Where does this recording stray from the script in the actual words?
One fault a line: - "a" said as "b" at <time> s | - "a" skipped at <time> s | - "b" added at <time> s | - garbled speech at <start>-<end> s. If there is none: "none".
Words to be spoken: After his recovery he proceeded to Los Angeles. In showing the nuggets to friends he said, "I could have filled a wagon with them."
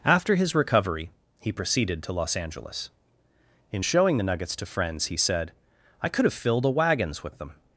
- "wagon" said as "wagons" at 6.7 s